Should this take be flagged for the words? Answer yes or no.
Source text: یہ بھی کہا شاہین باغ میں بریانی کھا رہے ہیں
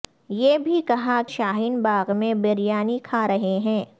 no